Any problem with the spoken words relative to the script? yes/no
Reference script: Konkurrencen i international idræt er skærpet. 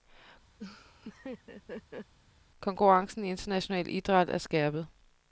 no